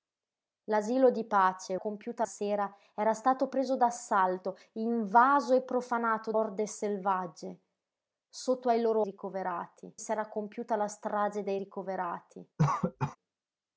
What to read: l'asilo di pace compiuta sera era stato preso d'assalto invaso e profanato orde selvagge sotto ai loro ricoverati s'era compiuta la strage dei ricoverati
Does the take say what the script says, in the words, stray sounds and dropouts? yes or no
no